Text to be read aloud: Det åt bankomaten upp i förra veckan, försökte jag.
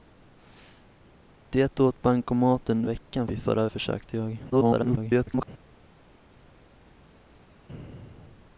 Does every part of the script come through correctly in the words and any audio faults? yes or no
no